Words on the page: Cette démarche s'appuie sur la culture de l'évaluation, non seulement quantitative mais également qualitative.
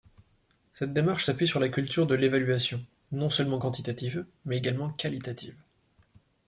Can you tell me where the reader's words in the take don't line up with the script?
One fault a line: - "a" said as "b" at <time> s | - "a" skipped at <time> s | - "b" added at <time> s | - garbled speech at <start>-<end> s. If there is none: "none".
none